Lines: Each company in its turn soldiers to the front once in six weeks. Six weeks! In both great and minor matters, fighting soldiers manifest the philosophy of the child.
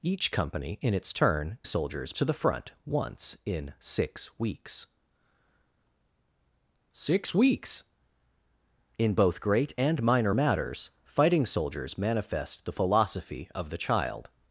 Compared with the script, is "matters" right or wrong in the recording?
right